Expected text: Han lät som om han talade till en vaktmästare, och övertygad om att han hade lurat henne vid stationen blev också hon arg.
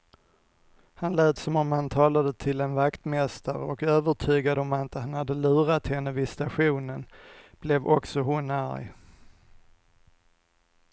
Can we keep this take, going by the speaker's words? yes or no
yes